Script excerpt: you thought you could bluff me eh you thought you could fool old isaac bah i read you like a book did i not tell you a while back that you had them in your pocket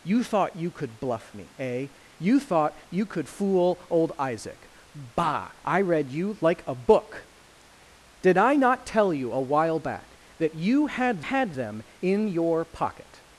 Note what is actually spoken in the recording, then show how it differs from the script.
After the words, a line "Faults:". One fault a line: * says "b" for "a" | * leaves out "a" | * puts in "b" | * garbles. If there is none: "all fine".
you thought you could bluff me eh you thought you could fool old isaac bah i read you like a book did i not tell you a while back that you had had them in your pocket
Faults:
* puts in "had"